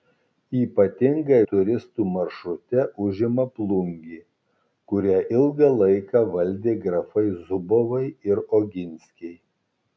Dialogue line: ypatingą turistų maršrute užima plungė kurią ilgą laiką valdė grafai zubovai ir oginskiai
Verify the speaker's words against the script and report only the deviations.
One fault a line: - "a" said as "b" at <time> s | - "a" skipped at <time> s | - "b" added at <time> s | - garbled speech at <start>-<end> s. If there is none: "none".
none